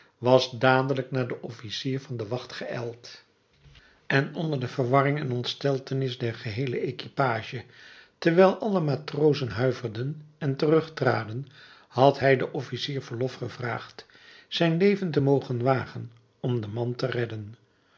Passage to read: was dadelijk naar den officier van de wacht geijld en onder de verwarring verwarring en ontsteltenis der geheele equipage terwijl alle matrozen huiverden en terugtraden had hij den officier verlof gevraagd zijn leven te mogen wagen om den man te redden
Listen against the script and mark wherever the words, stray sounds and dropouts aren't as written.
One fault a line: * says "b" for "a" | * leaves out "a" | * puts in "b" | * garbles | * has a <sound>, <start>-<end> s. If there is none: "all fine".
* leaves out "verwarring"